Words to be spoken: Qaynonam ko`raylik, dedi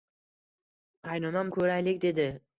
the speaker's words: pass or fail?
pass